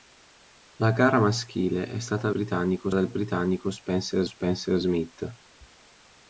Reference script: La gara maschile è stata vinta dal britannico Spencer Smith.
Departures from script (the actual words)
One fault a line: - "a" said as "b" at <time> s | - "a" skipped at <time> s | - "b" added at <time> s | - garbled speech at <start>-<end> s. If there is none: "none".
- "vinta" said as "britannico" at 2.3 s
- "Spencer" added at 4.2 s